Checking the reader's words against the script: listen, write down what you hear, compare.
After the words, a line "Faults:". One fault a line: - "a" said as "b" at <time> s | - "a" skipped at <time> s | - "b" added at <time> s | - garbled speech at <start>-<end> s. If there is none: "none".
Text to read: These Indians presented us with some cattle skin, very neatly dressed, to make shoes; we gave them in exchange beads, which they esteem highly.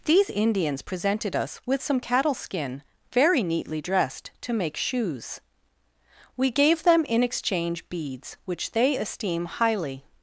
These Indians presented us with some cattle skin, very neatly dressed, to make shoes; we gave them in exchange beads, which they esteem highly.
Faults:
none